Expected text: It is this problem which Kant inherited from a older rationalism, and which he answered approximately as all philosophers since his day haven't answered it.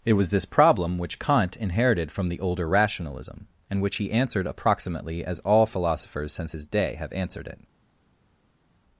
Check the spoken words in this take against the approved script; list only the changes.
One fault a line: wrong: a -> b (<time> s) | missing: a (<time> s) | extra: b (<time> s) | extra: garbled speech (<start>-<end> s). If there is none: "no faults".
wrong: is -> was (0.1 s)
wrong: a -> the (2.3 s)
wrong: haven't -> have (7.0 s)